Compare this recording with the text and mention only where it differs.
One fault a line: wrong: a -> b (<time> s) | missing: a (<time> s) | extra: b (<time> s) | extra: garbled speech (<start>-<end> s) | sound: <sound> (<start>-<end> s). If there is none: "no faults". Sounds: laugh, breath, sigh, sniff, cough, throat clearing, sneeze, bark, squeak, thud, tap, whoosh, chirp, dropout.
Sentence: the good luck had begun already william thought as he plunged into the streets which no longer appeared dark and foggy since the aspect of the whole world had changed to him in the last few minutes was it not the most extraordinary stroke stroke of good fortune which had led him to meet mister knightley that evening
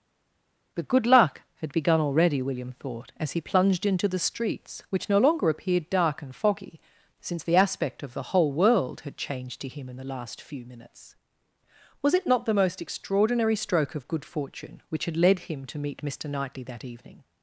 missing: stroke (13.9 s)